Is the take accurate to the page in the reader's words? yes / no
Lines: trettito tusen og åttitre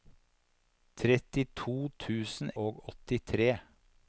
yes